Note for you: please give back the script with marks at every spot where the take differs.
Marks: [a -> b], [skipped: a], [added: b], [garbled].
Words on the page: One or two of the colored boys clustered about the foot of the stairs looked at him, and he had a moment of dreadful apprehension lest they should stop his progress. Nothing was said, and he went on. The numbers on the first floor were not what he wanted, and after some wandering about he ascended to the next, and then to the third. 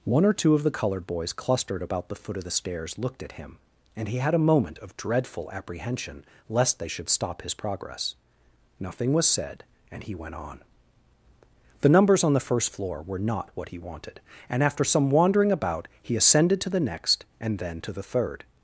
One or two of the colored boys clustered about the foot of the stairs looked at him, and he had a moment of dreadful apprehension lest they should stop his progress. Nothing was said, and he went on. The numbers on the first floor were not what he wanted, and after some wandering about he ascended to the next, and then to the third.